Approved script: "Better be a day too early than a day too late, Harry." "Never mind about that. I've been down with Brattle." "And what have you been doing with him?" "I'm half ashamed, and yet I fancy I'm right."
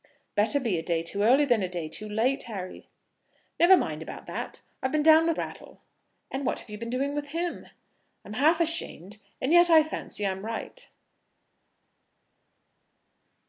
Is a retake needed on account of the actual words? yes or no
no